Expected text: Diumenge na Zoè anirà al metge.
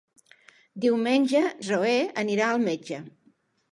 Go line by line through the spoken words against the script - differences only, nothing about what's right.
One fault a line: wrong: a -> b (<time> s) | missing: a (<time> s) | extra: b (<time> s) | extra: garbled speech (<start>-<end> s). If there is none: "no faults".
missing: na (1.4 s)